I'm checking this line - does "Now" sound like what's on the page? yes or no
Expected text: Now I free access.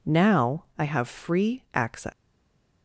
yes